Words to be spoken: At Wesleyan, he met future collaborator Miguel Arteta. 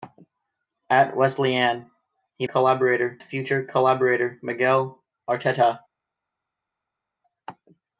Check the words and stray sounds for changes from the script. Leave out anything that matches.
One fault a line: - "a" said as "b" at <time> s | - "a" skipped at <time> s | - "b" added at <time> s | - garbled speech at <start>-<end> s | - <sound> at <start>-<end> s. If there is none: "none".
- "met" said as "collaborator" at 2.4 s